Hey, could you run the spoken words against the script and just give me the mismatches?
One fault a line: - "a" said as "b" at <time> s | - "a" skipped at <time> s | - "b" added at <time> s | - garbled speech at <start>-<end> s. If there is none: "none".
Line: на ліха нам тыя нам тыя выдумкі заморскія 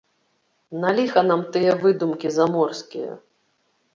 - "нам тыя" skipped at 1.8 s